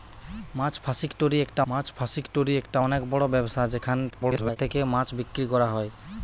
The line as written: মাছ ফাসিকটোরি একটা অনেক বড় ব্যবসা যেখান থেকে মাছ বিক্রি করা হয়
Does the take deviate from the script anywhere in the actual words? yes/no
yes